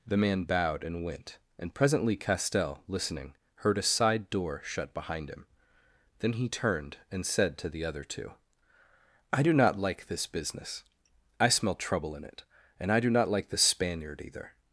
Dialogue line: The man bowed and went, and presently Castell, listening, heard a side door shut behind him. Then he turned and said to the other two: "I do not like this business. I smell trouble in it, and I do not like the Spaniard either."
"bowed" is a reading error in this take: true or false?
false